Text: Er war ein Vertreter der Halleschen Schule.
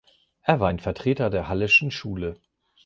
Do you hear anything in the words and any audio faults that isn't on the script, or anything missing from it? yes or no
no